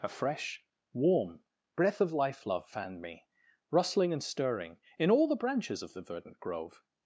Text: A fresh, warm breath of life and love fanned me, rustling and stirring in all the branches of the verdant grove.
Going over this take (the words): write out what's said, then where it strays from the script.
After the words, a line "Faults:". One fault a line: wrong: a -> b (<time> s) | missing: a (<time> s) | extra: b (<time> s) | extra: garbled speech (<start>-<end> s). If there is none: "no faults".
A fresh, warm breath of life love fanned me, rustling and stirring in all the branches of the verdant grove.
Faults:
missing: and (2.5 s)